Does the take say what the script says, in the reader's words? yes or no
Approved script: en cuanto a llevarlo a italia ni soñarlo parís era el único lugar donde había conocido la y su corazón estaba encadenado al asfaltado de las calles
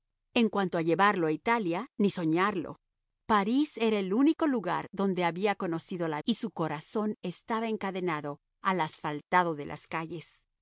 yes